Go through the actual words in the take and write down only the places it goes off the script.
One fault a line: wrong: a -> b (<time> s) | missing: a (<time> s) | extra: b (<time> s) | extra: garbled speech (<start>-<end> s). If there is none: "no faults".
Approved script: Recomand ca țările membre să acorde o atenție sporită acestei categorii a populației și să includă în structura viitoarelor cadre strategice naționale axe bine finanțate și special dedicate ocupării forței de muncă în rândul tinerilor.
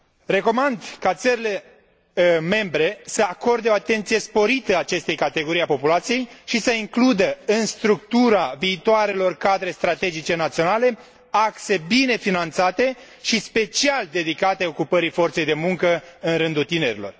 no faults